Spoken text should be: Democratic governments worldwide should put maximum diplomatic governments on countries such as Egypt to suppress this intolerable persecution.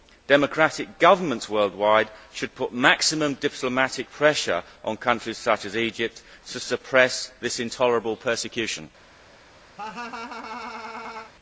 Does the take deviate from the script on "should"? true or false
false